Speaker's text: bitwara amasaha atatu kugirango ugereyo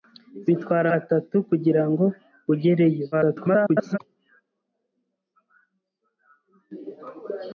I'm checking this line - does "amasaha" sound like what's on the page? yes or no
no